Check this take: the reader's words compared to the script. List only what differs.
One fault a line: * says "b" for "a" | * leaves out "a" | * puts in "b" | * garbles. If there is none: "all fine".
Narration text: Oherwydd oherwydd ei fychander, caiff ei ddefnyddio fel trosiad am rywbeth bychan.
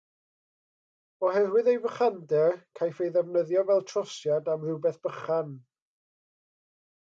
* leaves out "oherwydd"